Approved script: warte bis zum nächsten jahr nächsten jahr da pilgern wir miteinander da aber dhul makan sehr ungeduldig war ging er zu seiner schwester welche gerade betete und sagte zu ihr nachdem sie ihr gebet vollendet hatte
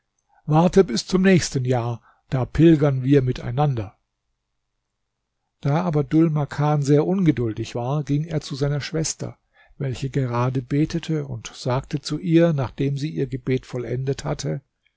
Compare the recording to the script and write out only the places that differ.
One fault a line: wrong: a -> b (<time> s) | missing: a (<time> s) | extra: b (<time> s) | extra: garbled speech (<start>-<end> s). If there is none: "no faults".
missing: nächsten jahr (2.0 s)